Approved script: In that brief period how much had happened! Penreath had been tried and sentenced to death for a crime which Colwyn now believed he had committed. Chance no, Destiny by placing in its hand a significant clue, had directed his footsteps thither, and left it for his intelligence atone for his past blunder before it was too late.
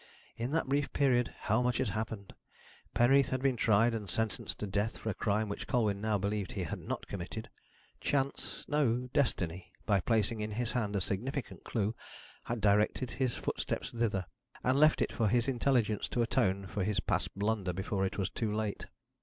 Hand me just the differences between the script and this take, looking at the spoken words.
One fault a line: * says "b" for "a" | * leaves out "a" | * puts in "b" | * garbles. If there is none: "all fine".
* puts in "not"
* says "his" for "its"
* puts in "to"